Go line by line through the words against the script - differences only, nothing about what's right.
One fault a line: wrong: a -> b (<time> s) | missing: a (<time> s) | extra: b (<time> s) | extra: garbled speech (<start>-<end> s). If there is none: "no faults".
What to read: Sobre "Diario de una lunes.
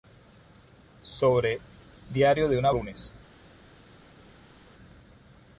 no faults